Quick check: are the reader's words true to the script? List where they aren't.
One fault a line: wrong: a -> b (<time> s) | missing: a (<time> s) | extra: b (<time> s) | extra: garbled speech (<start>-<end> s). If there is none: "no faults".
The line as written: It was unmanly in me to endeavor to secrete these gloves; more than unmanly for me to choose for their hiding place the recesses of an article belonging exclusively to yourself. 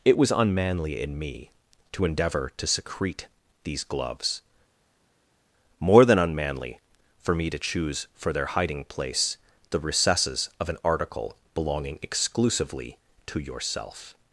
no faults